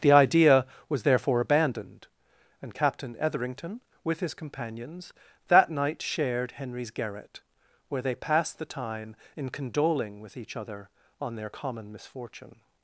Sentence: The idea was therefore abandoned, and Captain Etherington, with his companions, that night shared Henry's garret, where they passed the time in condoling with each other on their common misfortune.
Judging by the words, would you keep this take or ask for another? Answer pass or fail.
pass